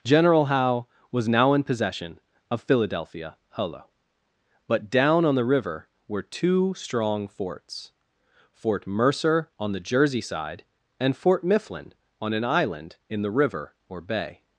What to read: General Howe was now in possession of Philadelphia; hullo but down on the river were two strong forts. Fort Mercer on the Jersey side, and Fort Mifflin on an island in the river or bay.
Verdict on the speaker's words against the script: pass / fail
pass